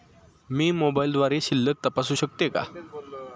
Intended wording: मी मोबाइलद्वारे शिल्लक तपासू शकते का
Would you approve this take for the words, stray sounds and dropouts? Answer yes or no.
yes